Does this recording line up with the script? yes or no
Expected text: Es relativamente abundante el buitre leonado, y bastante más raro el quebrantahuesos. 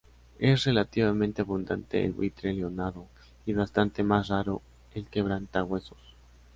yes